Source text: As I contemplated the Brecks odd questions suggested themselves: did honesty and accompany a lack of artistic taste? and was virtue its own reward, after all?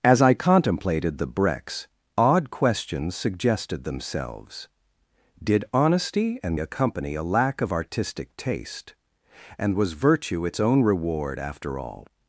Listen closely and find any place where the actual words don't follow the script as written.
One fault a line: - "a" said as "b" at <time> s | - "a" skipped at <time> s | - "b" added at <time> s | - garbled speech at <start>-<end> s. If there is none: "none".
none